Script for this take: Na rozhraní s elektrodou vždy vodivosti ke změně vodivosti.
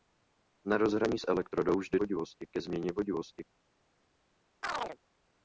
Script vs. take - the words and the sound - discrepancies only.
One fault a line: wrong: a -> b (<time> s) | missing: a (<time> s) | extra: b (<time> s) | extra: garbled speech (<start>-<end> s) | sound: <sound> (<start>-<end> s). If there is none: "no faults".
sound: chirp (4.6-5.0 s)